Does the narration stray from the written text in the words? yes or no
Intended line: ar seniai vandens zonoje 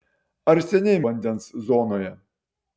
no